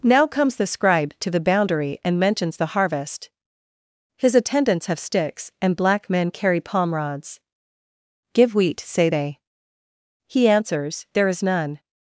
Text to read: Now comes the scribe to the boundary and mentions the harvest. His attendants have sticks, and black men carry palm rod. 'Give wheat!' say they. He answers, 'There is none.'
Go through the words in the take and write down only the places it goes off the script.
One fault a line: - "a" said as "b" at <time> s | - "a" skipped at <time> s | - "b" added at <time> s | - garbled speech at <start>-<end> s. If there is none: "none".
- "rod" said as "rods" at 6.9 s